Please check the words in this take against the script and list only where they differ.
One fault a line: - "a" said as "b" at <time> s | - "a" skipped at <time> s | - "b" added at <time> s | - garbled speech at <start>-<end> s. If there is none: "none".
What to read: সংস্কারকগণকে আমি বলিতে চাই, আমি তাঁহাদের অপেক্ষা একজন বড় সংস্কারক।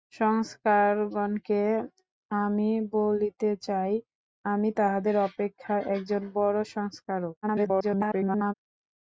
- garbled speech at 7.4-8.5 s